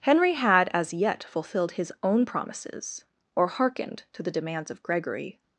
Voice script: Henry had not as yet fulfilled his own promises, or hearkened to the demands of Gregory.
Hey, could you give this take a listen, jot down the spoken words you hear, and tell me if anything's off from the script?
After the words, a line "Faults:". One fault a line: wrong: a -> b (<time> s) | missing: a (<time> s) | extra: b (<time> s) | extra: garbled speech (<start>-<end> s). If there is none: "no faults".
Henry had as yet fulfilled his own promises, or hearkened to the demands of Gregory.
Faults:
missing: not (0.7 s)